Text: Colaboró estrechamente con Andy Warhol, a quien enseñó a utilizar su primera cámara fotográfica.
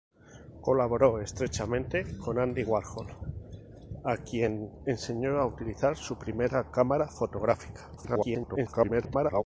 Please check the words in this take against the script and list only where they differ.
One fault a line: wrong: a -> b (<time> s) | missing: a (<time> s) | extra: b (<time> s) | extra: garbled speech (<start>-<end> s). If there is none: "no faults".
extra: garbled speech (8.0-9.4 s)